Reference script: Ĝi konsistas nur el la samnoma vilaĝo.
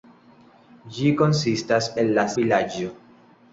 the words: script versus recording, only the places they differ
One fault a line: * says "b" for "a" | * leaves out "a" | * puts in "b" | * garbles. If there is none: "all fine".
* leaves out "nur"
* leaves out "samnoma"